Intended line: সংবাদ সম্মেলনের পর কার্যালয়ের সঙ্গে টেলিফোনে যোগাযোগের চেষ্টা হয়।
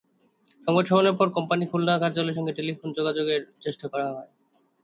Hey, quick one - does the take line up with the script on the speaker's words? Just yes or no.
no